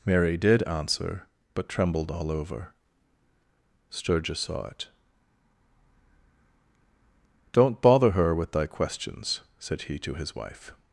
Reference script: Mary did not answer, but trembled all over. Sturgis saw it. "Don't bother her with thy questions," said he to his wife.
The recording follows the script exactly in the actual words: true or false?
false